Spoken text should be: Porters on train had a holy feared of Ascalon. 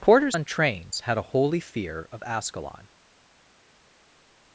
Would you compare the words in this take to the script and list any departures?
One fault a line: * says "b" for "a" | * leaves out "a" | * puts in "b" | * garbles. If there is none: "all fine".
* says "trains" for "train"
* says "fear" for "feared"